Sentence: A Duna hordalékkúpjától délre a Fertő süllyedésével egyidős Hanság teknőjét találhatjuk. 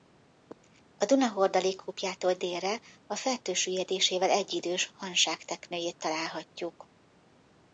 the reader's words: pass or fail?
pass